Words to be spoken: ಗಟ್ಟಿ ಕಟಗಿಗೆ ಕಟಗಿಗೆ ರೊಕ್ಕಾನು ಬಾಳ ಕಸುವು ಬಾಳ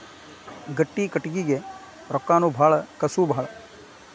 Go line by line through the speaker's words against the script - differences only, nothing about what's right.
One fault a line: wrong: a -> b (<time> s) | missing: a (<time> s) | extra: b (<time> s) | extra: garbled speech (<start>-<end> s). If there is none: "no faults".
missing: ಕಟಗಿಗೆ (1.6 s)